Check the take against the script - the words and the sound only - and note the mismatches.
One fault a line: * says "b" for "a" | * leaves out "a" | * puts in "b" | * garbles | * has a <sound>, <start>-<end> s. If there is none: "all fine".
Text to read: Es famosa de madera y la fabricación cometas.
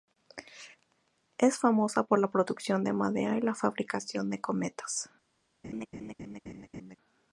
* puts in "por la producción"
* puts in "de"
* has a laugh, 5.6-7.0 s